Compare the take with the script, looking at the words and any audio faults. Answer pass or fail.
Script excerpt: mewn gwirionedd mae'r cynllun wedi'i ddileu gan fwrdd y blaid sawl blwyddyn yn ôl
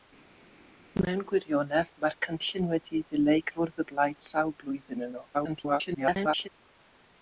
fail